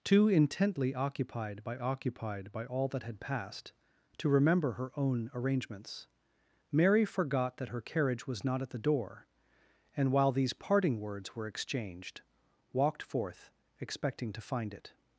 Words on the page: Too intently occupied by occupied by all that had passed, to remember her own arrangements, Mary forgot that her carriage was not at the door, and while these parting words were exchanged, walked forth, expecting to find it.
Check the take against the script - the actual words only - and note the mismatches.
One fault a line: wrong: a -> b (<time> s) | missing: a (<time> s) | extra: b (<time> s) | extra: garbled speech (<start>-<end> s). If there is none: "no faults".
no faults